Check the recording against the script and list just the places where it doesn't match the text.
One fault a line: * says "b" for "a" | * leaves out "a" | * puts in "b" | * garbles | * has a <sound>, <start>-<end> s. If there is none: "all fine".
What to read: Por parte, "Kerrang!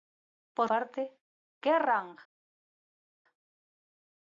all fine